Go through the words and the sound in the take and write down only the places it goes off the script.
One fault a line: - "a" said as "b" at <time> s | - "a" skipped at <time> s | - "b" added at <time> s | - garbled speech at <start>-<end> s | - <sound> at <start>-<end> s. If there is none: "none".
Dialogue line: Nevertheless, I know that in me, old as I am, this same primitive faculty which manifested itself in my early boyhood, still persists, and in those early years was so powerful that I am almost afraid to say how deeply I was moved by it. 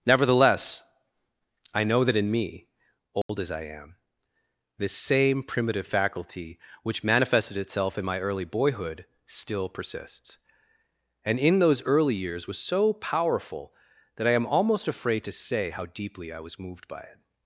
- dropout at 3.2-3.3 s